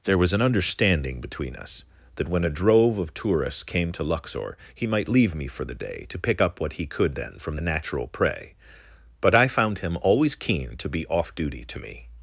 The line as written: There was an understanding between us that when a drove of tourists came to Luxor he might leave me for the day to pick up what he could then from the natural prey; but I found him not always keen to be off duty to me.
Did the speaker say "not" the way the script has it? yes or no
no